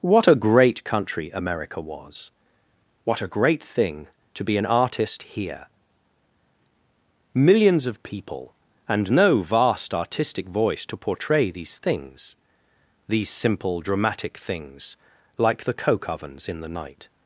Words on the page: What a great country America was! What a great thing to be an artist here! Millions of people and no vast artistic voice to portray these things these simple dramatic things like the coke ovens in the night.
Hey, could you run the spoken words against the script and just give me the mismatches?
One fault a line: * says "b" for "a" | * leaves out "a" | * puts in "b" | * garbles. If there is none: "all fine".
all fine